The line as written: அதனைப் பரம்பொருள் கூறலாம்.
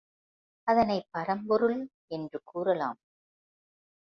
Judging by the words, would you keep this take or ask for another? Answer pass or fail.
fail